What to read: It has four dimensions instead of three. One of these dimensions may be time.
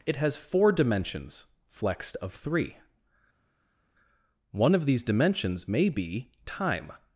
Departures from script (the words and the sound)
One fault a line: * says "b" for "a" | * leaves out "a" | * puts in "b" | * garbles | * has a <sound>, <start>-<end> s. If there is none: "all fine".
* says "flexed" for "instead"